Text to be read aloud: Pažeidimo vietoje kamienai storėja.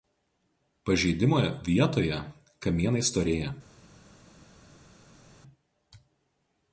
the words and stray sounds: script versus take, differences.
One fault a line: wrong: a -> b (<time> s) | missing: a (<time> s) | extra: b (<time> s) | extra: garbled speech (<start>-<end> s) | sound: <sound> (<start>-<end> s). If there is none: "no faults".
no faults